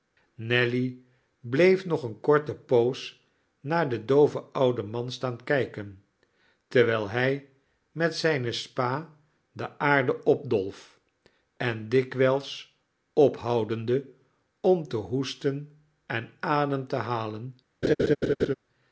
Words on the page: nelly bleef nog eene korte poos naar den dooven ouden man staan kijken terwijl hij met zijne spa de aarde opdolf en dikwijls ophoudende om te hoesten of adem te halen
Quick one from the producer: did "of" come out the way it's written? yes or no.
no